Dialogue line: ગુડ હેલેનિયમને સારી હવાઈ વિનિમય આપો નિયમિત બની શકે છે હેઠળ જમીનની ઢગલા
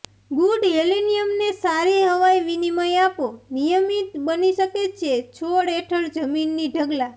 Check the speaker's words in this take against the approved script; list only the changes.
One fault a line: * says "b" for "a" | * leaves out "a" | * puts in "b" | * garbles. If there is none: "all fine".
* puts in "છોડ"